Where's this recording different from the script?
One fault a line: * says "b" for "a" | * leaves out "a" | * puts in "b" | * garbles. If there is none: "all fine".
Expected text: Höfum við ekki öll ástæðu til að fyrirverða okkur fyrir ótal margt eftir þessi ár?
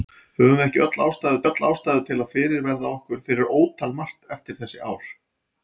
* puts in "öll ástæðu"